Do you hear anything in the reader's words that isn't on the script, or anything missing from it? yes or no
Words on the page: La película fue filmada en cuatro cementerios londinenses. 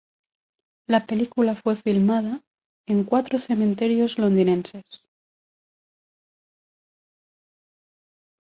no